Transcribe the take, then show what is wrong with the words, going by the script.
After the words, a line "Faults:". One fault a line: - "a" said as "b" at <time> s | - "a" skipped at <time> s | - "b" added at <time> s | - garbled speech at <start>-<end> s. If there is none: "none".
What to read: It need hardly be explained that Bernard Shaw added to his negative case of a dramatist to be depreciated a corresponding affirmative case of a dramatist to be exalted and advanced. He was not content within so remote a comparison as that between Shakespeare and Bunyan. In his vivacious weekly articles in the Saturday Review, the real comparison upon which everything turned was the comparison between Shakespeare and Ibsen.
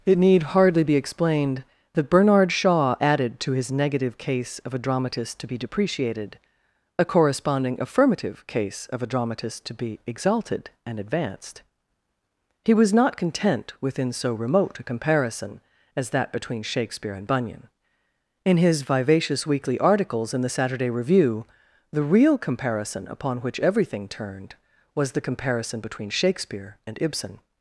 It need hardly be explained that Bernard Shaw added to his negative case of a dramatist to be depreciated a corresponding affirmative case of a dramatist to be exalted and advanced. He was not content within so remote a comparison as that between Shakespeare and Bunyan. In his vivacious weekly articles in the Saturday Review, the real comparison upon which everything turned was the comparison between Shakespeare and Ibsen.
Faults:
none